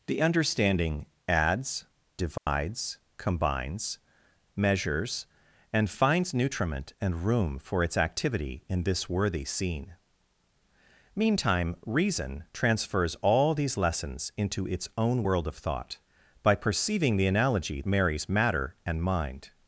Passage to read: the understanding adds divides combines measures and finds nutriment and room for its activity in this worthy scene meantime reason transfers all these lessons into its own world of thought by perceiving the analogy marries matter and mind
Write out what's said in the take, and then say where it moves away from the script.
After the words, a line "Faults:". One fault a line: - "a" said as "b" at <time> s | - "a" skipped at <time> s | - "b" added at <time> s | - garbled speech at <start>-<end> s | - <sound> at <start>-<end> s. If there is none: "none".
the understanding adds divides combines measures and finds nutriment and room for its activity in this worthy scene meantime reason transfers all these lessons into its own world of thought by perceiving the analogy marries matter and mind
Faults:
- dropout at 2.4-2.5 s